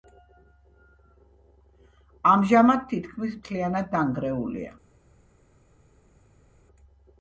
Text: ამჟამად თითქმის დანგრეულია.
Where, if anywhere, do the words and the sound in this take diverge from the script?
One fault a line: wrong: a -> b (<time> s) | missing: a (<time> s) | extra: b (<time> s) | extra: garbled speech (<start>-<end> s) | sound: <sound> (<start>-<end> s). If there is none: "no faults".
extra: მთლიანად (3.4 s)